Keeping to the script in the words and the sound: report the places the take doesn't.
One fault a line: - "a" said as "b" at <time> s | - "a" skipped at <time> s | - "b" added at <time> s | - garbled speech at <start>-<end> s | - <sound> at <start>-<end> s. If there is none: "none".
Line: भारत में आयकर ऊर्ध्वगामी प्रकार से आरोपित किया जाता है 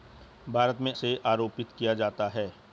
- "आयकर ऊर्ध्वगामी प्रकार" skipped at 0.9 s